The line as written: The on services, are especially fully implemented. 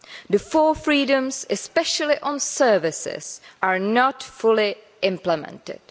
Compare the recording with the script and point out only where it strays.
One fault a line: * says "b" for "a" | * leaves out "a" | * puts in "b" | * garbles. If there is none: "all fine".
* puts in "four freedoms especially"
* says "not" for "especially"